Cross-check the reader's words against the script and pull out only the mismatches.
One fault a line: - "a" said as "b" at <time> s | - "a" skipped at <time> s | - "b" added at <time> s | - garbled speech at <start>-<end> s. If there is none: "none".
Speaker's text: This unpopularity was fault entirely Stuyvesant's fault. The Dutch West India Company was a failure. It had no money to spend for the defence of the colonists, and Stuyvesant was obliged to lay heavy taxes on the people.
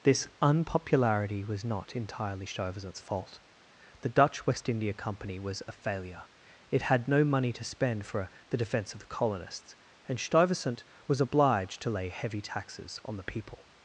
- "fault" said as "not" at 1.6 s